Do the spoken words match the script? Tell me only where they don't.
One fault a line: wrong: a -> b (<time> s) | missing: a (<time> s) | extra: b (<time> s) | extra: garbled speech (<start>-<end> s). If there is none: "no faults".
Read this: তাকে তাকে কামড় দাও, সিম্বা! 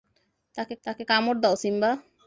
no faults